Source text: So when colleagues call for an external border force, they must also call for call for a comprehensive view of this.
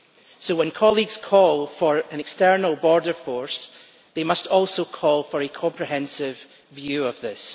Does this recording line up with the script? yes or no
no